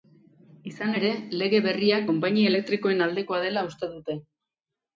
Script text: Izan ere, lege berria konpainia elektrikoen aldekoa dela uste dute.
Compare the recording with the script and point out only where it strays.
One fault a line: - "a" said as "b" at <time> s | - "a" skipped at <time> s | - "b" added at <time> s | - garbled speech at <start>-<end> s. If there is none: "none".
none